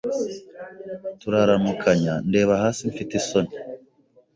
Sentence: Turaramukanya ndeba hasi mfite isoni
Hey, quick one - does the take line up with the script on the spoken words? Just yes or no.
yes